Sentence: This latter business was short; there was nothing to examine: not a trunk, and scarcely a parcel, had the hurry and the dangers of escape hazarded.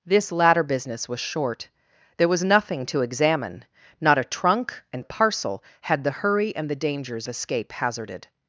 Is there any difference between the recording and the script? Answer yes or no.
yes